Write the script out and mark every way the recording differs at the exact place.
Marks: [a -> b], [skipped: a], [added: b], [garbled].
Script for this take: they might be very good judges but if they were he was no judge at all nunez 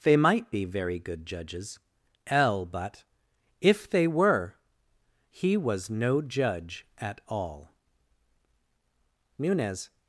they might be very good judges [added: l] but if they were he was no judge at all nunez